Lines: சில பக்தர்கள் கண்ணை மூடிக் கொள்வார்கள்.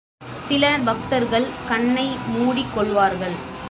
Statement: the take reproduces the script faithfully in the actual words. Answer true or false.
true